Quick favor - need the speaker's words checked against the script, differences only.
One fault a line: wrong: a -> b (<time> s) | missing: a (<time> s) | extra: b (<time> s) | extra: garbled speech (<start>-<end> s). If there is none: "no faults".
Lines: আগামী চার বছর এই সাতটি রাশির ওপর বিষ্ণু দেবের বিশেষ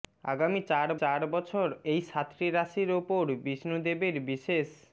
extra: চার (1.0 s)